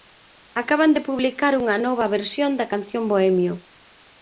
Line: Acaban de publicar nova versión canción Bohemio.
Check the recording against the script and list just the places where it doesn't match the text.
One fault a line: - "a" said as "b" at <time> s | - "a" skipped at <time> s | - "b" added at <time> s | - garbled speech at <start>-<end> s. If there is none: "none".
- "unha" added at 1.6 s
- "da" added at 2.6 s